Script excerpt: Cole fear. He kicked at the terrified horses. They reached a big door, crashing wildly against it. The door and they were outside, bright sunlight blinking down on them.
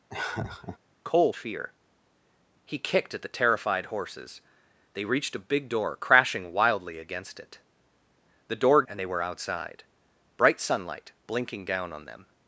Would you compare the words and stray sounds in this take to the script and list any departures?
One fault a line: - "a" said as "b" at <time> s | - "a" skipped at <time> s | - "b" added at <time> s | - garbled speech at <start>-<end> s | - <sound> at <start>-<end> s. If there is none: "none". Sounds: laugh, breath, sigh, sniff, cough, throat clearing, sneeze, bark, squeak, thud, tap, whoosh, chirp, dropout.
- laugh at 0.1-0.8 s